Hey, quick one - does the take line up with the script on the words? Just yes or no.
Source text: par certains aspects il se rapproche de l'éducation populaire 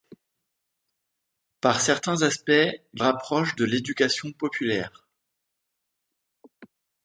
no